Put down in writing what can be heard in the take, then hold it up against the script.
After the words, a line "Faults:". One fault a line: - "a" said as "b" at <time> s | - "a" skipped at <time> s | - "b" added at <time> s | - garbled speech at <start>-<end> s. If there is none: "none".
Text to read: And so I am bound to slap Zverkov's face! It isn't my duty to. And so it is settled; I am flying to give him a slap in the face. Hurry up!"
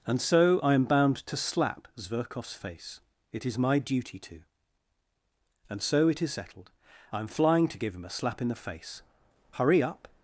And so I am bound to slap Zverkov's face! It is my duty to. And so it is settled; I am flying to give him a slap in the face. Hurry up!"
Faults:
- "isn't" said as "is" at 3.4 s